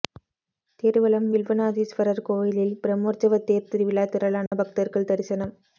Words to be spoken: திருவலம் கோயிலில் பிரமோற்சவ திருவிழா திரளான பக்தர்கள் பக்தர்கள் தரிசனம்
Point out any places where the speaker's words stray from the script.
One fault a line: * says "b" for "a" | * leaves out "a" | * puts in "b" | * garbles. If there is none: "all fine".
* puts in "வில்வநாதீஸ்வரர்"
* puts in "தேர்"
* leaves out "பக்தர்கள்"